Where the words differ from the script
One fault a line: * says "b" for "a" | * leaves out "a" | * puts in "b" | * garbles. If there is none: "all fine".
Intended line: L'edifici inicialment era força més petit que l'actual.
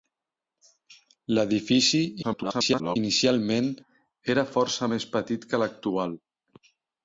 * garbles